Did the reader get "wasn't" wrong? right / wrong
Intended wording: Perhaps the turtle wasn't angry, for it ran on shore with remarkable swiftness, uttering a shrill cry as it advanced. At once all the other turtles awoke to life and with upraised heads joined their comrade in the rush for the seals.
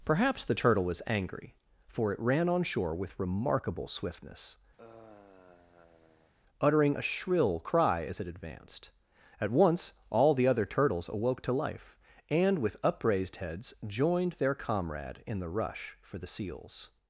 wrong